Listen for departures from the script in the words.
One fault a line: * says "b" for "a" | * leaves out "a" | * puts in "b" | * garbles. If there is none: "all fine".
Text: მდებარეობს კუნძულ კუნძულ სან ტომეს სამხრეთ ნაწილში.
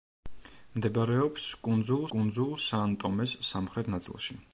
all fine